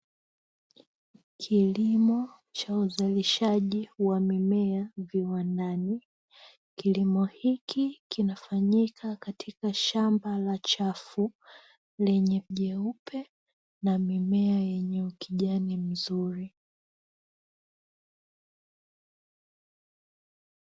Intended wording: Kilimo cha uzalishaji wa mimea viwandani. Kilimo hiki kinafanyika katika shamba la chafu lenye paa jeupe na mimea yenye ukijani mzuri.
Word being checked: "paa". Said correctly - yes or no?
no